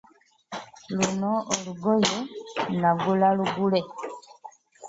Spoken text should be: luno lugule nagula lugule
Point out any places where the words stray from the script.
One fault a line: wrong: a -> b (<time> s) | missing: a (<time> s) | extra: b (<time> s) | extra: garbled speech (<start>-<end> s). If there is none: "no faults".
wrong: lugule -> olugoye (1.5 s)